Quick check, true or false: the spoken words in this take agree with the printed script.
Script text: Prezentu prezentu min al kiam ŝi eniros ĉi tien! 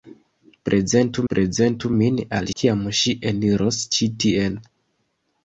true